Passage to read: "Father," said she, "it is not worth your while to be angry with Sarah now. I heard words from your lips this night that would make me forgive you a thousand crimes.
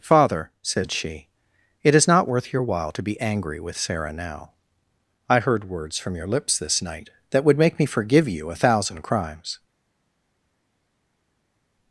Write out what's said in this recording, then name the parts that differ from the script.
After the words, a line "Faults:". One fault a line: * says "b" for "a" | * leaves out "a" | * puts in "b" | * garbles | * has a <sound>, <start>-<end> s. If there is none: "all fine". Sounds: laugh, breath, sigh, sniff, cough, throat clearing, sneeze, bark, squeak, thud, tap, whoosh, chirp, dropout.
"Father," said she, "it is not worth your while to be angry with Sarah now. I heard words from your lips this night that would make me forgive you a thousand crimes.
Faults:
all fine